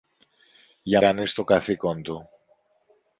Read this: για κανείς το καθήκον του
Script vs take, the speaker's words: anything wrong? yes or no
no